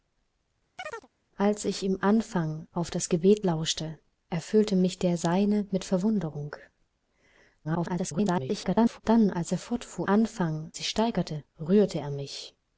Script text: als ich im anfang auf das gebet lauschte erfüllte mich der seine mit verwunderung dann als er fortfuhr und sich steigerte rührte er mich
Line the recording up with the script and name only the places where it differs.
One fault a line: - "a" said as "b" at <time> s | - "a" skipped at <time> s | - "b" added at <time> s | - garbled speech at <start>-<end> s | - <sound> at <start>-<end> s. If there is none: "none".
- chirp at 0.8-1.1 s
- garbled speech at 7.6-9.0 s
- "und" said as "anfang" at 10.1 s